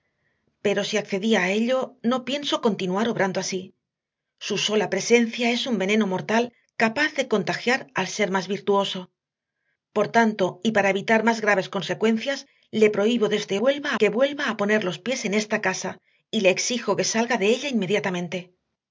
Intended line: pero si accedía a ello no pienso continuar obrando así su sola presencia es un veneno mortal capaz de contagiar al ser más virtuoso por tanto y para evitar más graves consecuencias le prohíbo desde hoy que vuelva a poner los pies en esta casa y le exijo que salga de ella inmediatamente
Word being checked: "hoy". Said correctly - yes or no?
no